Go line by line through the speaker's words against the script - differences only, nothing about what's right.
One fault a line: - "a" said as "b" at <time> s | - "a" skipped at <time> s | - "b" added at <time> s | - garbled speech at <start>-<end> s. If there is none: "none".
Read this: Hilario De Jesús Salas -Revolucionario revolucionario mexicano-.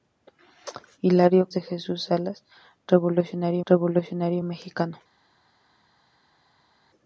none